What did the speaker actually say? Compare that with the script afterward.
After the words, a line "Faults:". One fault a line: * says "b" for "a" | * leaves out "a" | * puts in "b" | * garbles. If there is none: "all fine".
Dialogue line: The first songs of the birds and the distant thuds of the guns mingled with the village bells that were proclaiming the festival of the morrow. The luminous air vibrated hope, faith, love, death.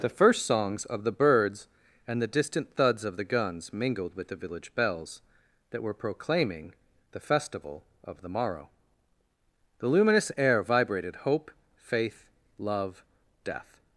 The first songs of the birds and the distant thuds of the guns mingled with the village bells that were proclaiming the festival of the morrow. The luminous air vibrated hope, faith, love, death.
Faults:
all fine